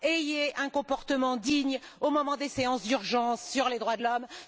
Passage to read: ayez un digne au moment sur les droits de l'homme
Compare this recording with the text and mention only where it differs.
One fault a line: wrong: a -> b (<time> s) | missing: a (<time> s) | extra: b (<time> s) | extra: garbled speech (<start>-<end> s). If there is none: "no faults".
extra: comportement (0.7 s)
extra: des séances d'urgence (2.4 s)